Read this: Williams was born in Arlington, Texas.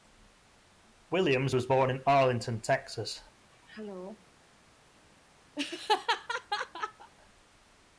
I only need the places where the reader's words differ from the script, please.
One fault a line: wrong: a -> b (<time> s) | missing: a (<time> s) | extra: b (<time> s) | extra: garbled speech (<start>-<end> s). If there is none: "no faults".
no faults